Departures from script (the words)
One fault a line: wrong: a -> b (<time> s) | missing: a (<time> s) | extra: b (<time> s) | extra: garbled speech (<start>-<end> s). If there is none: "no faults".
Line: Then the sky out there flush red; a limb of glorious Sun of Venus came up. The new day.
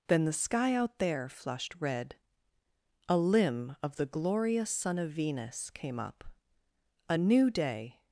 wrong: flush -> flushed (1.3 s)
extra: the (4.0 s)
wrong: The -> A (7.1 s)